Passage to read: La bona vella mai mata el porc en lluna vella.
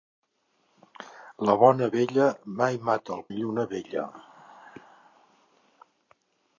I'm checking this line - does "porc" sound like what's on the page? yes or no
no